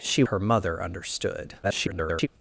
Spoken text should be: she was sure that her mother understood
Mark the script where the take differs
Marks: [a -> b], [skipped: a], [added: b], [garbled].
she [skipped: was sure that] her mother understood [garbled]